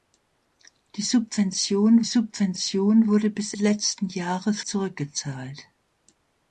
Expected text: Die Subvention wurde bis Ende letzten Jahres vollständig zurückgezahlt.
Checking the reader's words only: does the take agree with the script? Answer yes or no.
no